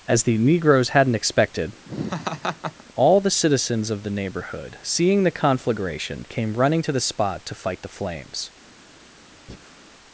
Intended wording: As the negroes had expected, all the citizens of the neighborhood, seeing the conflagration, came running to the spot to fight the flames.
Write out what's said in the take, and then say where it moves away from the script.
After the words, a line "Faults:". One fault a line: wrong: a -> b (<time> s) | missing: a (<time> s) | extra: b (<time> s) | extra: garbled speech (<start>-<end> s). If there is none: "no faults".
As the negroes hadn't expected, all the citizens of the neighborhood, seeing the conflagration, came running to the spot to fight the flames.
Faults:
wrong: had -> hadn't (0.9 s)